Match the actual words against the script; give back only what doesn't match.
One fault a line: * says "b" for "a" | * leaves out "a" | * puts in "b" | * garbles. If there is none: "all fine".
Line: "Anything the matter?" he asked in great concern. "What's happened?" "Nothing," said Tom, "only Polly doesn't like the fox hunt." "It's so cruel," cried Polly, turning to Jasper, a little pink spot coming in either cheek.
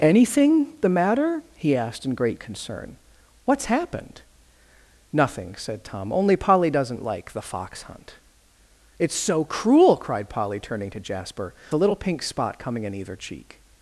all fine